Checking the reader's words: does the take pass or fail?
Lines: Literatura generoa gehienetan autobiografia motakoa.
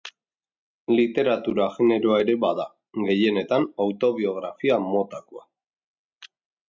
fail